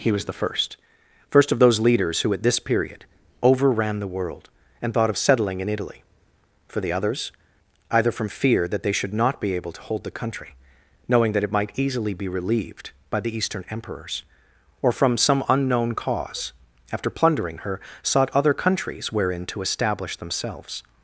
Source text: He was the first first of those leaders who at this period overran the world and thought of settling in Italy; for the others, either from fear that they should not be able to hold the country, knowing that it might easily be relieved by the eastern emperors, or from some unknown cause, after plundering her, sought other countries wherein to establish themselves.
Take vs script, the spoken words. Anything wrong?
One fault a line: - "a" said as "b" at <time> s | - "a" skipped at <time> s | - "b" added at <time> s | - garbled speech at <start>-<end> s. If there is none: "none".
none